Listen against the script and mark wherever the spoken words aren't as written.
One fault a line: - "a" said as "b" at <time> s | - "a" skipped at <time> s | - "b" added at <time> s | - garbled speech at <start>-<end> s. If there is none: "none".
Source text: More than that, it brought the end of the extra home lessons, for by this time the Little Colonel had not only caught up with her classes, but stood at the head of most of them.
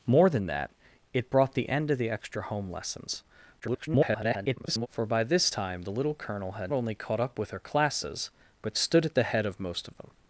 - garbled speech at 3.6-4.9 s
- "not" skipped at 6.7 s